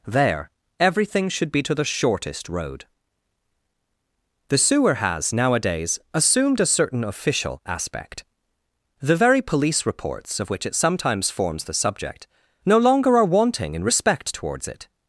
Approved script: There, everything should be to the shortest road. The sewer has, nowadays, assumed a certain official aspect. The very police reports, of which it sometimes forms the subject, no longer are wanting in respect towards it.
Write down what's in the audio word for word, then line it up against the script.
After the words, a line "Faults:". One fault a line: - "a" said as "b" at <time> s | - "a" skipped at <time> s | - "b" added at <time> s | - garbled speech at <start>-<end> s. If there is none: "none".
There, everything should be to the shortest road. The sewer has, nowadays, assumed a certain official aspect. The very police reports, of which it sometimes forms the subject, no longer are wanting in respect towards it.
Faults:
none